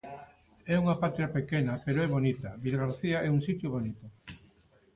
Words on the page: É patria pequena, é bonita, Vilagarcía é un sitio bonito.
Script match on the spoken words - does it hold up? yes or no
no